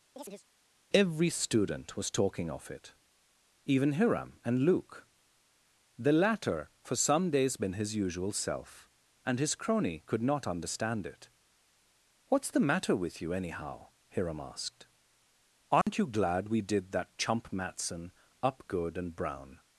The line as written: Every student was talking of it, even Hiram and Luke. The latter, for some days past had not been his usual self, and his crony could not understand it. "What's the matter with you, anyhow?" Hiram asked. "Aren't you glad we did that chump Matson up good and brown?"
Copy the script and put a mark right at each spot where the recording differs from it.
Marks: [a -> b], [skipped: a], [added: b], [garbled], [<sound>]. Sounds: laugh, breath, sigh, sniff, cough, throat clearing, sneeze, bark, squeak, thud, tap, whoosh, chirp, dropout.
[chirp] Every student was talking of it, even Hiram and Luke. The latter, for some days [skipped: past had not] been his usual self, and his crony could not understand it. "What's the matter with you, anyhow?" Hiram asked. "Aren't [dropout] you glad we did that chump Matson up good and brown?"